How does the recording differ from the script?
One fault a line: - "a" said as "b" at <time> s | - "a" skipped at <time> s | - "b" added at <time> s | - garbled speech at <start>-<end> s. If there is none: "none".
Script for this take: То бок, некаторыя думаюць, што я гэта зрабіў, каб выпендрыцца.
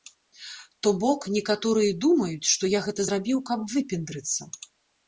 none